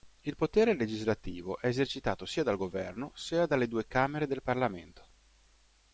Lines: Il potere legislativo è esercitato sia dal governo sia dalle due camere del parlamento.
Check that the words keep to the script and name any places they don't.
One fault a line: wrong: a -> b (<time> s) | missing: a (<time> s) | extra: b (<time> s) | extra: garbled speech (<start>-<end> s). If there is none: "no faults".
no faults